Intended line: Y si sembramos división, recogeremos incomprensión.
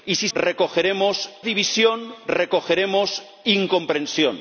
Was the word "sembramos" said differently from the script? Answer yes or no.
yes